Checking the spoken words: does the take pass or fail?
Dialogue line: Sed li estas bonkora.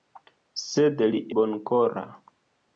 fail